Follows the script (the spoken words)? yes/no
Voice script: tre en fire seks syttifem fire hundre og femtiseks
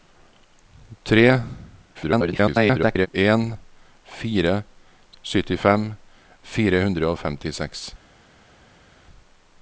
no